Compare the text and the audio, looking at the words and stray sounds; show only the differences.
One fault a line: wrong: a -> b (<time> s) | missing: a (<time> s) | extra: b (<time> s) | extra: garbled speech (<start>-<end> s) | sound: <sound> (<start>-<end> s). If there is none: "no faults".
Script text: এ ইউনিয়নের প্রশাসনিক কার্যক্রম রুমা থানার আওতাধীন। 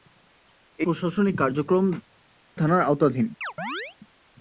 missing: ইউনিয়নের (0.9 s)
missing: রুমা (1.8 s)
sound: chirp (3.4-4.0 s)